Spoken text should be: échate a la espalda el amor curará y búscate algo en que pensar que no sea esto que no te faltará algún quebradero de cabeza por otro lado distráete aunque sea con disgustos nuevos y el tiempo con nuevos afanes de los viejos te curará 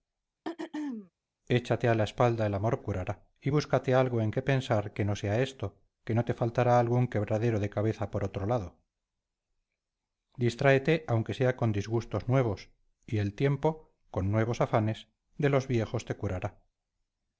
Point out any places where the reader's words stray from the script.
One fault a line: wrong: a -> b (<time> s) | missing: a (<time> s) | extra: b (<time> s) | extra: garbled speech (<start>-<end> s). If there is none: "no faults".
no faults